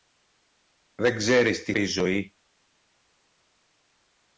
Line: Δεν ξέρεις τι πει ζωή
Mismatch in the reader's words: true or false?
false